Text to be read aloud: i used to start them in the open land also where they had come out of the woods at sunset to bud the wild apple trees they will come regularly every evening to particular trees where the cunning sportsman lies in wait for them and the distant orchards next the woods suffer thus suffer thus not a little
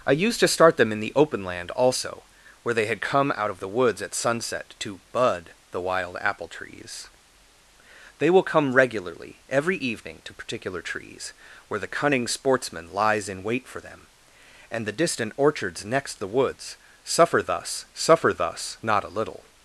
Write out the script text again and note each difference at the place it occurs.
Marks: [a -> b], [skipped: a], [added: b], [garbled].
i used to start them in the open land also where they had come out of the woods at sunset to bud the wild apple trees they will come regularly every evening to particular trees where the cunning sportsman lies in wait for them and the distant orchards next the woods suffer thus suffer thus not a little